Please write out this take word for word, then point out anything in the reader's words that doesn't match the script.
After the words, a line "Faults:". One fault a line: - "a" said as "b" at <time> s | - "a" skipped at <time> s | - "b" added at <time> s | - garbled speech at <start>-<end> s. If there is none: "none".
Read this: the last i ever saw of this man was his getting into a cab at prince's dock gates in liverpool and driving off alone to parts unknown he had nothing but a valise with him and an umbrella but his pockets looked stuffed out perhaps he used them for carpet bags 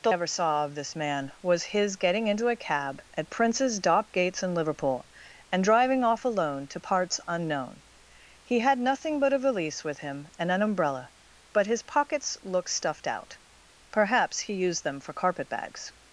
the ever saw of this man was his getting into a cab at prince's dock gates in liverpool and driving off alone to parts unknown he had nothing but a valise with him and an umbrella but his pockets looked stuffed out perhaps he used them for carpet bags
Faults:
- "last i" skipped at 0.1 s